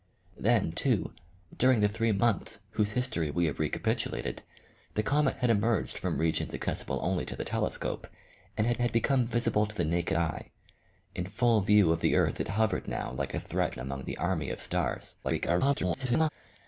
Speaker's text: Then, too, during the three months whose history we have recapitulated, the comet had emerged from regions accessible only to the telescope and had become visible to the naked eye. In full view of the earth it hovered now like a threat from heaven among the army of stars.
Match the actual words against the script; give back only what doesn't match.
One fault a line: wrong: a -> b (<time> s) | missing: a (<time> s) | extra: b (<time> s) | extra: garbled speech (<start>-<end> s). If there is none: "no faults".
extra: had (8.8 s)
missing: from heaven (13.7 s)
extra: garbled speech (15.2-16.3 s)